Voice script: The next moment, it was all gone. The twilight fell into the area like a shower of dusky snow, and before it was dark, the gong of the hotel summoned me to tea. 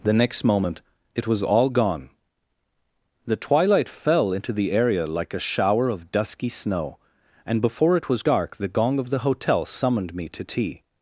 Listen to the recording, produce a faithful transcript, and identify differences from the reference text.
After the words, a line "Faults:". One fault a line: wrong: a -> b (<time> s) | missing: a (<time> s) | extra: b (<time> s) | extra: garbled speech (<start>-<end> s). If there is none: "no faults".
The next moment, it was all gone. The twilight fell into the area like a shower of dusky snow, and before it was dark, the gong of the hotel summoned me to tea.
Faults:
no faults